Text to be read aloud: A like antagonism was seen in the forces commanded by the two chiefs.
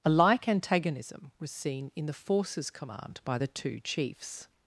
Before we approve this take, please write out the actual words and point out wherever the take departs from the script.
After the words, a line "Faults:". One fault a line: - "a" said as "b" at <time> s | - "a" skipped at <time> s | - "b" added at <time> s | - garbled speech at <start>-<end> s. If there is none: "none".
A like antagonism was seen in the forces command by the two chiefs.
Faults:
- "commanded" said as "command" at 2.7 s